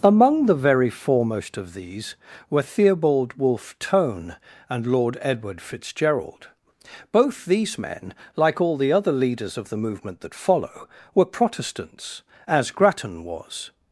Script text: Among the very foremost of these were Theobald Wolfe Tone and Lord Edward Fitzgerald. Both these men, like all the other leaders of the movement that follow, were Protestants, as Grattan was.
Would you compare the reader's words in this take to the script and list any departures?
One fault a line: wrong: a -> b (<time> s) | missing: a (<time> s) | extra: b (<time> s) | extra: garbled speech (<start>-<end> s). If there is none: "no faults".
no faults